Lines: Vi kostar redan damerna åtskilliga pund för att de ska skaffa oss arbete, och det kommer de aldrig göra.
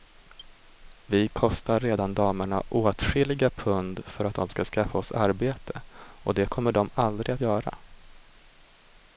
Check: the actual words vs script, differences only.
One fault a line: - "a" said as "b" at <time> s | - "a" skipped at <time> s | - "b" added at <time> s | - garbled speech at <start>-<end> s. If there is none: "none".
none